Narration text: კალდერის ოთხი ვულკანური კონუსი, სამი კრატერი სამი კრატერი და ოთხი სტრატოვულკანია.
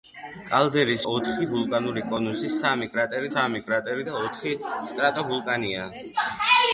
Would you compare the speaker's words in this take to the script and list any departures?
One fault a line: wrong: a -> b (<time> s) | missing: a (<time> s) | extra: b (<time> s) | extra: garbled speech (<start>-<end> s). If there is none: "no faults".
no faults